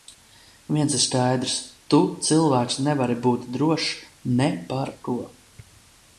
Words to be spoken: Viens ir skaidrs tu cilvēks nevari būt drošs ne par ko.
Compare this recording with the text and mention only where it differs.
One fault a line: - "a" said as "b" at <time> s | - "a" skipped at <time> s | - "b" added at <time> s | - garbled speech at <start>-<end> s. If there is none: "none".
none